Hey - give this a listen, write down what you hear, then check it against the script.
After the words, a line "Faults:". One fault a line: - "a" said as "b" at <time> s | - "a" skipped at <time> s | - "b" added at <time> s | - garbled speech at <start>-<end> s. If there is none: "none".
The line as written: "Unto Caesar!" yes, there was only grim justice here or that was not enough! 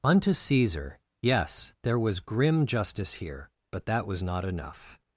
"Unto Caesar!" yes, there was grim justice here but that was not enough!
Faults:
- "only" skipped at 2.2 s
- "or" said as "but" at 3.7 s